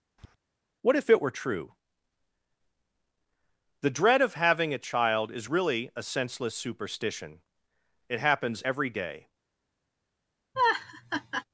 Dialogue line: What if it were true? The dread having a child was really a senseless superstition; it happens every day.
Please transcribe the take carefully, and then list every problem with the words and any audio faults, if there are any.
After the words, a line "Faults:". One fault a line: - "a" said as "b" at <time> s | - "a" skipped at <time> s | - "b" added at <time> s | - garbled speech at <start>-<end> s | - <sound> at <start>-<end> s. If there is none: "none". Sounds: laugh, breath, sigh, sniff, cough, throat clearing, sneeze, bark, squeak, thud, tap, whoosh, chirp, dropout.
What if it were true? The dread of having a child is really a senseless superstition; it happens every day.
Faults:
- tap at 0.2-0.4 s
- "of" added at 4.2 s
- "was" said as "is" at 5.3 s
- laugh at 10.5-11.4 s